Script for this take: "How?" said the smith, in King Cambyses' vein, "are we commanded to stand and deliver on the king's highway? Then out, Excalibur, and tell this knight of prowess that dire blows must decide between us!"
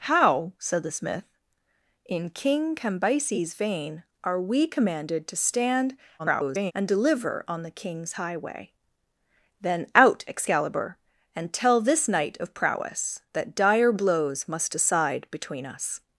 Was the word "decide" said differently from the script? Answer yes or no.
no